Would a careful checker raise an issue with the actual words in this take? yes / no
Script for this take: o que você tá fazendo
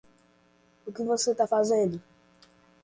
no